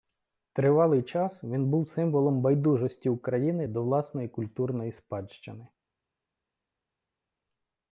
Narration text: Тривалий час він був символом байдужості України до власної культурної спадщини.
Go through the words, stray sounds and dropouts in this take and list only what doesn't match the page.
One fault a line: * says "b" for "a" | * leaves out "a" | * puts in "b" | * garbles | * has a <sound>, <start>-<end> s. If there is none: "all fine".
all fine